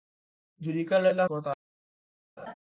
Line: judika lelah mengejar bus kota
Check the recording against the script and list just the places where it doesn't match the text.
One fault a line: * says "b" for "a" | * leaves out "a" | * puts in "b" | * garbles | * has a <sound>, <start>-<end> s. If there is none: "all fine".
* leaves out "mengejar bus"
* has a laugh, 2.4-2.5 s